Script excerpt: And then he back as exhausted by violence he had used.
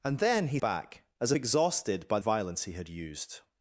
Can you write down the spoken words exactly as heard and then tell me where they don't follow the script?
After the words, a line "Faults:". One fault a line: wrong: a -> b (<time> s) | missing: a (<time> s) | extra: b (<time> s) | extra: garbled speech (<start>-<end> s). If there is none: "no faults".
And then he back as exhausted by violence he had used.
Faults:
no faults